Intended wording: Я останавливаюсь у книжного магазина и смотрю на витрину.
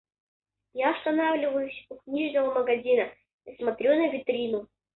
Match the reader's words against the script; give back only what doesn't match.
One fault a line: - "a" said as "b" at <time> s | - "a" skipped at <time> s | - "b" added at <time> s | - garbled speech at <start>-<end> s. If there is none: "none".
none